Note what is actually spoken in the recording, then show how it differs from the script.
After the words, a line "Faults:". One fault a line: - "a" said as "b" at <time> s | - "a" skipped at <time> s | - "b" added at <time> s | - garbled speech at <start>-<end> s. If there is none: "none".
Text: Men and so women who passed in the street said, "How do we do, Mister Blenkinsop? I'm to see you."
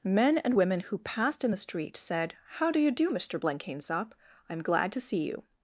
Men and women who passed in the street said, "How do you do, Mister Blenkinsop? I'm glad to see you."
Faults:
- "so" skipped at 0.6 s
- "we" said as "you" at 2.8 s
- "glad" added at 4.6 s